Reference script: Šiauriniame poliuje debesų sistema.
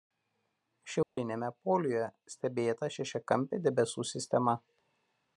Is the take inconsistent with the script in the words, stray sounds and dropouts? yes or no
yes